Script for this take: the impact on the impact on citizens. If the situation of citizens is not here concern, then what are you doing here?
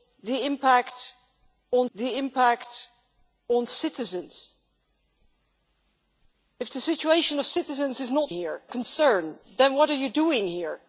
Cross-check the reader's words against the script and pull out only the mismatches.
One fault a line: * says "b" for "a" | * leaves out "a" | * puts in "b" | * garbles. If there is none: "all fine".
all fine